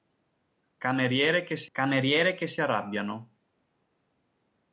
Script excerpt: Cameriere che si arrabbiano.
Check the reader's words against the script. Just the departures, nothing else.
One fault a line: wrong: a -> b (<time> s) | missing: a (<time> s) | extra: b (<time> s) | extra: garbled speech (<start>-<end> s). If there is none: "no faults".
extra: cameriere che si (1.7 s)